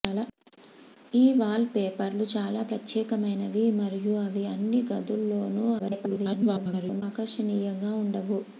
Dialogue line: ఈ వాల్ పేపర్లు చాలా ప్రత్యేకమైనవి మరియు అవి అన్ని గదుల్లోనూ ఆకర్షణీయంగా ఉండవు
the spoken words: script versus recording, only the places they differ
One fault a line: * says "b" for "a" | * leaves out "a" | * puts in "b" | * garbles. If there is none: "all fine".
* garbles